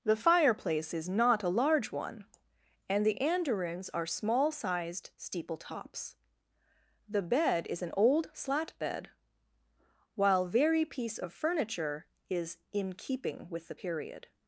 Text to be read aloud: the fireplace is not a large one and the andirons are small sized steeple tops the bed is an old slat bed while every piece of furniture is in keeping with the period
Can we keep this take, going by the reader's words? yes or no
no